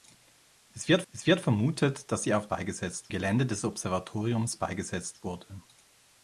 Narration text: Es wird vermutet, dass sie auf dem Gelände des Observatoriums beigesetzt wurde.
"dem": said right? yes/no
no